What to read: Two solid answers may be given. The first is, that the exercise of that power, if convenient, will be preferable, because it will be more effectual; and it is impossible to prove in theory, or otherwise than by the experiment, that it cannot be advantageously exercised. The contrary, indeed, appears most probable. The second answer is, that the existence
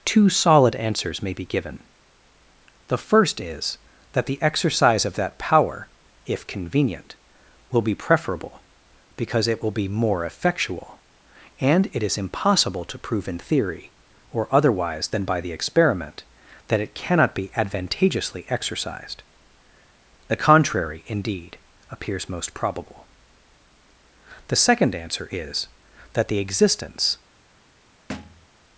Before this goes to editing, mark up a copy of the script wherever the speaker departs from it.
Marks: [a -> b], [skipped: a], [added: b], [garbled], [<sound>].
Two solid answers may be given. The first is, that the exercise of that power, if convenient, will be preferable, because it will be more effectual; and it is impossible to prove in theory, or otherwise than by the experiment, that it cannot be advantageously exercised. The contrary, indeed, appears most probable. The second answer is, that the existence [thud]